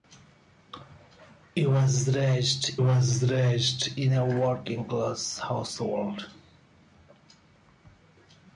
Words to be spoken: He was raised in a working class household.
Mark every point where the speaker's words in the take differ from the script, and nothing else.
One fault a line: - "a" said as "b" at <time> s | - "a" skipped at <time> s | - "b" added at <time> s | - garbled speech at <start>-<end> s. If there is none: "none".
- "was raised" added at 2.8 s